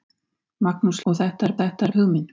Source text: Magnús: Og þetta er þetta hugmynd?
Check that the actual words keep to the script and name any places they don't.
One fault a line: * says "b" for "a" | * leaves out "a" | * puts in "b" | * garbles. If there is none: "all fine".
all fine